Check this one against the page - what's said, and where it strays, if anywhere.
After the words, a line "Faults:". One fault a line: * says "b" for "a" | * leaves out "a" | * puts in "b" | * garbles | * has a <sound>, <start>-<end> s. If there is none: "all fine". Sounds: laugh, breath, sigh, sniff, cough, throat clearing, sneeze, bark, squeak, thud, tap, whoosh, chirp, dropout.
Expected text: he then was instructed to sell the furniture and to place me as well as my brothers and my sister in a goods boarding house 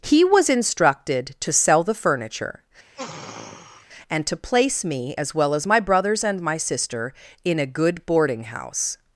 he was instructed to sell the furniture and to place me as well as my brothers and my sister in a good boarding house
Faults:
* leaves out "then"
* has a sniff, 2.9-3.9 s
* says "good" for "goods"